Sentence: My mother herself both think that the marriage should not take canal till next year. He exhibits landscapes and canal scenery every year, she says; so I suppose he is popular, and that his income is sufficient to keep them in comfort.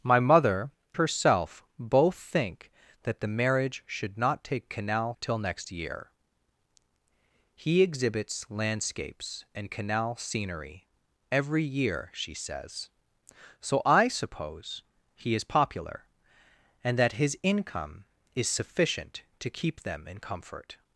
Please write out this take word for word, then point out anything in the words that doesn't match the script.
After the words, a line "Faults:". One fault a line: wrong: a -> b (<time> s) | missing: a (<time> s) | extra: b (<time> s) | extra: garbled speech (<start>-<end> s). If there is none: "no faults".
My mother herself both think that the marriage should not take canal till next year. He exhibits landscapes and canal scenery every year, she says; so I suppose he is popular, and that his income is sufficient to keep them in comfort.
Faults:
no faults